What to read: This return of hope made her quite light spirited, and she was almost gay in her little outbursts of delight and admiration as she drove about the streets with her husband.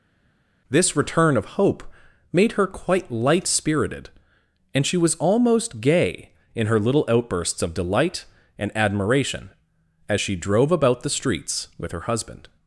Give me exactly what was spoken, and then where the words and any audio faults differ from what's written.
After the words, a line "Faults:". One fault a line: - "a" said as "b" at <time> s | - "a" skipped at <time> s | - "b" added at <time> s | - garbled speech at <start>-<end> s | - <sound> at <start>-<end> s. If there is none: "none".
This return of hope made her quite light spirited, and she was almost gay in her little outbursts of delight and admiration as she drove about the streets with her husband.
Faults:
none